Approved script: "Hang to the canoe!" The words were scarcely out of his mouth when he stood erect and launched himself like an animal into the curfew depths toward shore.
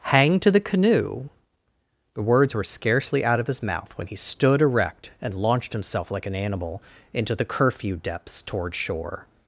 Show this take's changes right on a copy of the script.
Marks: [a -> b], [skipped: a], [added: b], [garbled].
"Hang to the canoe!" The words were scarcely out of his mouth when he stood erect and launched himself like an animal into the curfew depths toward shore.